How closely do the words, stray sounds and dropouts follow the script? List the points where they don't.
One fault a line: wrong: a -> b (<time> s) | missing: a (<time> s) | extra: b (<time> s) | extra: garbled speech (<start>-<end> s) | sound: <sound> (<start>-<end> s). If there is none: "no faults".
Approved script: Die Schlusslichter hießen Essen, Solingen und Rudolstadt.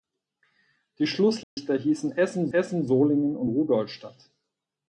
sound: dropout (1.4-1.6 s)
extra: Essen (2.5 s)